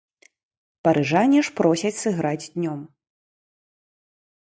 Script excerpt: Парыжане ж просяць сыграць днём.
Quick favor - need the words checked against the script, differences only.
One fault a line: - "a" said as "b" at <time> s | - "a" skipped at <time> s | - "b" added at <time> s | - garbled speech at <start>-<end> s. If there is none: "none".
none